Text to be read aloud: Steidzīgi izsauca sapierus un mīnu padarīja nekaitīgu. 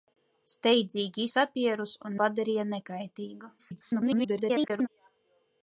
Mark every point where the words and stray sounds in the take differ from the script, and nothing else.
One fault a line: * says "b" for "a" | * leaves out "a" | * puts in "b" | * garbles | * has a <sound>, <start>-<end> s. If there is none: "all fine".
* leaves out "izsauca"
* leaves out "mīnu"
* garbles